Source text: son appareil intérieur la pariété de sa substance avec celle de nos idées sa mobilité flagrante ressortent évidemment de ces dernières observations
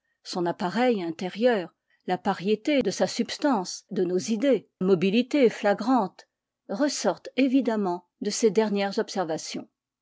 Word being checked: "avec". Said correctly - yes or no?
no